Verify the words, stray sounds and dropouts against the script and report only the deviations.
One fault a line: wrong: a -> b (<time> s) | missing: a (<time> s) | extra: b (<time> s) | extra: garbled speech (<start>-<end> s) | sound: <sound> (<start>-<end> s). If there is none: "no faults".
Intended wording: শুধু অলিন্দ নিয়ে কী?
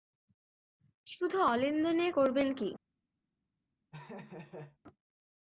extra: করবেন (2.1 s)
sound: laugh (3.9-4.8 s)